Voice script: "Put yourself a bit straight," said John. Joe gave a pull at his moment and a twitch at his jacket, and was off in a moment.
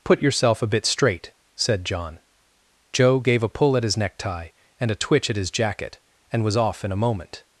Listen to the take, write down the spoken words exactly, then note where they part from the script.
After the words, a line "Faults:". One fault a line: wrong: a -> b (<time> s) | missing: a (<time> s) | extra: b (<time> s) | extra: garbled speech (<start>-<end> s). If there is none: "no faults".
"Put yourself a bit straight," said John. Joe gave a pull at his necktie and a twitch at his jacket, and was off in a moment.
Faults:
wrong: moment -> necktie (4.0 s)